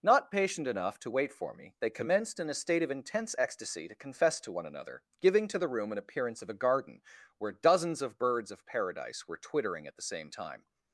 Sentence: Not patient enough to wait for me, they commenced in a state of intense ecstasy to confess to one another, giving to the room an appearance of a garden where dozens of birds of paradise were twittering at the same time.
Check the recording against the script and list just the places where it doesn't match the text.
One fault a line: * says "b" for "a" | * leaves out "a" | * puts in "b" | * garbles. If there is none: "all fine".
all fine